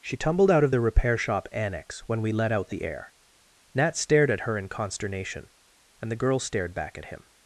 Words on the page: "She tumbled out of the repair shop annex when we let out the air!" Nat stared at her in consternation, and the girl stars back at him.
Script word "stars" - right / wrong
wrong